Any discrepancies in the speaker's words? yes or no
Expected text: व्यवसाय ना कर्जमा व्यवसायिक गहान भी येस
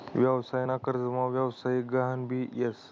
no